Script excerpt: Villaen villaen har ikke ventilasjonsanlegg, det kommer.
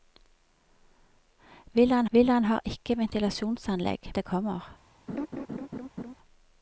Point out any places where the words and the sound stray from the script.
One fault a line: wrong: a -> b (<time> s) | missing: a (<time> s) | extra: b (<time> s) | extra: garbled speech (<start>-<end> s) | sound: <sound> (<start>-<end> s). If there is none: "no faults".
sound: laugh (5.1-6.1 s)